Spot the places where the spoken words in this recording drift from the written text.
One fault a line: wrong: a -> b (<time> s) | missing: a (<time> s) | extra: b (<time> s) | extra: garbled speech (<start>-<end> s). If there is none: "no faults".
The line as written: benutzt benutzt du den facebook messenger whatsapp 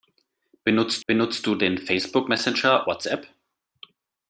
no faults